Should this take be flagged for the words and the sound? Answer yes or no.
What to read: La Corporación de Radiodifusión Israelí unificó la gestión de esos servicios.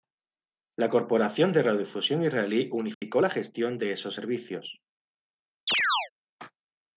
yes